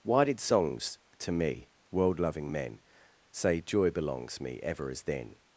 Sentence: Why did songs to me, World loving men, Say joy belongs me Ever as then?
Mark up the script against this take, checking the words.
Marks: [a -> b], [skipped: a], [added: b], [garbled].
Why did songs to me, World loving men, Say joy belongs me Ever as then?